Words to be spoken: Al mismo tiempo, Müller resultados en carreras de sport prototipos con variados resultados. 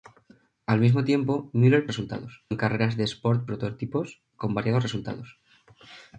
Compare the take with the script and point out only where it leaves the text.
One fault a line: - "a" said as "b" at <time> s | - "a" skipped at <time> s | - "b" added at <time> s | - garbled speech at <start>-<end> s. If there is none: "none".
none